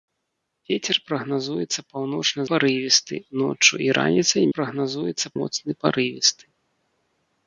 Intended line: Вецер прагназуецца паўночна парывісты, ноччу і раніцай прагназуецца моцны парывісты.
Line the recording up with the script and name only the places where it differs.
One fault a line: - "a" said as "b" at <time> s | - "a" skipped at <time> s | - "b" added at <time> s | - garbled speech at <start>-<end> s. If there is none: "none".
none